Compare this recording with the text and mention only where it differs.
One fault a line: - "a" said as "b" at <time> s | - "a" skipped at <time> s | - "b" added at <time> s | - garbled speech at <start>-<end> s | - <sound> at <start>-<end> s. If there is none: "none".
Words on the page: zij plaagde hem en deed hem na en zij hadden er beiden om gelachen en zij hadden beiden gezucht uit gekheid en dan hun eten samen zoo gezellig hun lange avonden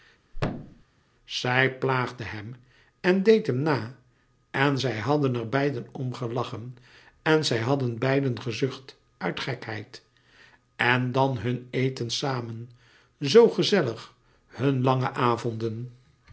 - thud at 0.3-0.8 s